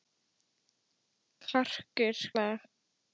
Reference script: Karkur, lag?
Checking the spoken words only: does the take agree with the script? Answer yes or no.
yes